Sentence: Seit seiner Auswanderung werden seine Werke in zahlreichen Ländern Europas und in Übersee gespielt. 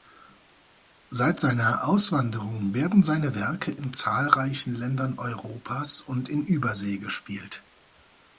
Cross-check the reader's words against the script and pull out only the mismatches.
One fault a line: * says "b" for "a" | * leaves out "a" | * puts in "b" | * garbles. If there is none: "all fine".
all fine